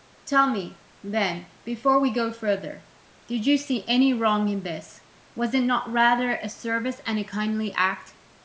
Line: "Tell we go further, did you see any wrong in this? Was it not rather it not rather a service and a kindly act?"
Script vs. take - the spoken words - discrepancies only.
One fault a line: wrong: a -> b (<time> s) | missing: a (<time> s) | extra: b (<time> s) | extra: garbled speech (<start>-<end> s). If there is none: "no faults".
extra: me then before (0.5 s)
missing: it not rather (6.4 s)